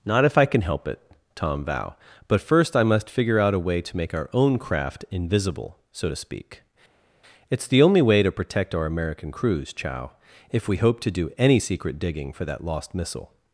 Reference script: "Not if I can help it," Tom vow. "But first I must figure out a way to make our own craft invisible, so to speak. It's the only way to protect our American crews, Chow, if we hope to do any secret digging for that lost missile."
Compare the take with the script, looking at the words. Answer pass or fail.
pass